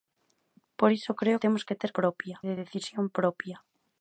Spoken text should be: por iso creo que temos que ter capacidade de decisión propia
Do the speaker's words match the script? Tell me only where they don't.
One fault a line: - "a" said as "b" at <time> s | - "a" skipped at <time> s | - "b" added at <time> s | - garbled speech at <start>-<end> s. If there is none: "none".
- "que" skipped at 1.4 s
- "capacidade" said as "propia" at 2.0 s